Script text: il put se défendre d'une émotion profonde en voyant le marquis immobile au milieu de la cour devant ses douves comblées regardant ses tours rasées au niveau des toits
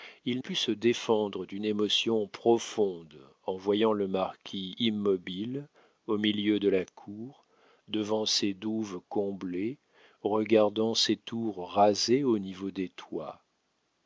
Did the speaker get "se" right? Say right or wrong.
right